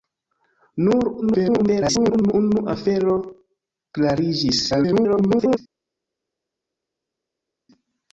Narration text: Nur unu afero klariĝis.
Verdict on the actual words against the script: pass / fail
fail